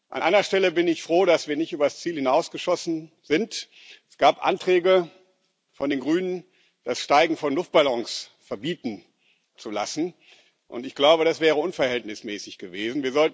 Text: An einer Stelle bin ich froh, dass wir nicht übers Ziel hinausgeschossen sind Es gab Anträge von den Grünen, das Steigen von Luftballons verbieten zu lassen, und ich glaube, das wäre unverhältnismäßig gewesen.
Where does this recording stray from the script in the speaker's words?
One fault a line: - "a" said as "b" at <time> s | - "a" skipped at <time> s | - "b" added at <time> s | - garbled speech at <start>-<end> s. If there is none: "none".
none